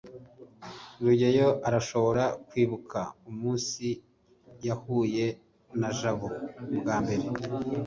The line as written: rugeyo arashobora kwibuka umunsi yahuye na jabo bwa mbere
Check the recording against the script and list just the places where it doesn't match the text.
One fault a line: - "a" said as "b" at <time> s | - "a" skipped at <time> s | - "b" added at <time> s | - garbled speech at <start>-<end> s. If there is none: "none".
none